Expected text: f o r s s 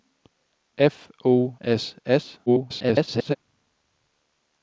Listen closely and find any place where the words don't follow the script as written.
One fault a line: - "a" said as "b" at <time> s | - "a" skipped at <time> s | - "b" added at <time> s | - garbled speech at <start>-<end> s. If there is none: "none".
- "r" skipped at 1.6 s
- garbled speech at 2.5-3.3 s